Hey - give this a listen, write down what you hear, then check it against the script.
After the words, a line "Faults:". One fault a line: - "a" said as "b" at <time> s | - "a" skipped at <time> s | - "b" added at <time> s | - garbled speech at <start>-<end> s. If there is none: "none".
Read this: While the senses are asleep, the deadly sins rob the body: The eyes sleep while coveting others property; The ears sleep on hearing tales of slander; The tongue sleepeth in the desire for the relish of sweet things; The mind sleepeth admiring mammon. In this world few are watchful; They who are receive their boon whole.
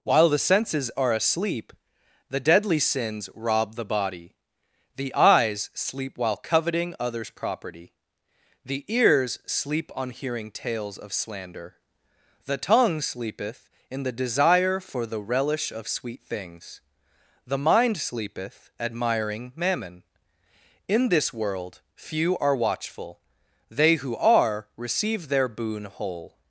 While the senses are asleep, the deadly sins rob the body: The eyes sleep while coveting others property; The ears sleep on hearing tales of slander; The tongue sleepeth in the desire for the relish of sweet things; The mind sleepeth admiring mammon. In this world few are watchful; They who are receive their boon whole.
Faults:
none